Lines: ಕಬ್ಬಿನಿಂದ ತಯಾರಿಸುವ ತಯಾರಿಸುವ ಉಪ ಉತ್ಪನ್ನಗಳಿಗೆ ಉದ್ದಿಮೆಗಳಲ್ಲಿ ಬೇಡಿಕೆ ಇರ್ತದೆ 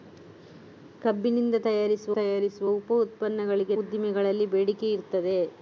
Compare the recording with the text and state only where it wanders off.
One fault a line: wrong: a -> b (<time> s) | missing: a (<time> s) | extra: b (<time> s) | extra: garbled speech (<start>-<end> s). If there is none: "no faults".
no faults